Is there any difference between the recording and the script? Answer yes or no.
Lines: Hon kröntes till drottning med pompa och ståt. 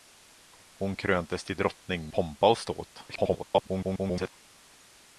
yes